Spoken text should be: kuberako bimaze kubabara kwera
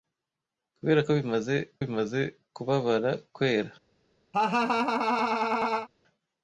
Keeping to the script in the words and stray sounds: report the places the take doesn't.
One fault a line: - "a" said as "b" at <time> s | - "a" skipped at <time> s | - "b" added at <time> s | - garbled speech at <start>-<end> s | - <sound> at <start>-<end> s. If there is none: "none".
- "bimaze" added at 1.8 s
- laugh at 4.3-5.9 s